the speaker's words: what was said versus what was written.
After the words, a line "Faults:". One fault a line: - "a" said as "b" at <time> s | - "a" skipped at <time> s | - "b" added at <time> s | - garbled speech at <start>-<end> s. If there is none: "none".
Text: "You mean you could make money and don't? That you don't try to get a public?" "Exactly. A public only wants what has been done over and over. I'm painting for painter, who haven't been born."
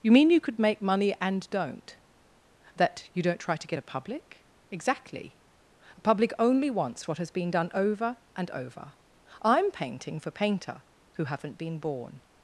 "You mean you could make money and don't? That you don't try to get a public?" "Exactly. A public only wants what has been done over and over. I'm painting for painter, who haven't been born."
Faults:
none